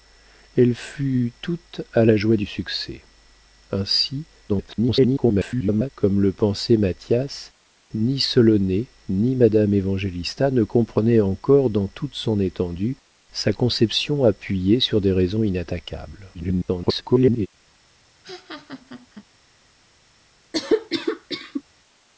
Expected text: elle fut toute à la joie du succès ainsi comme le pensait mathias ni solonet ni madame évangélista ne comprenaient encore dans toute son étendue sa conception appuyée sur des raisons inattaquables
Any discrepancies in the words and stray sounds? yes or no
yes